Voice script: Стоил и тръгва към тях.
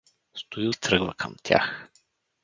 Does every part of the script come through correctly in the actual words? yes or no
yes